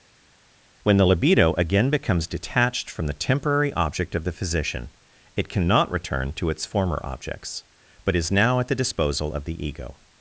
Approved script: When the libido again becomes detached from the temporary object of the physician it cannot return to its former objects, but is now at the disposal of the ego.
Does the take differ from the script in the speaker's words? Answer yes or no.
no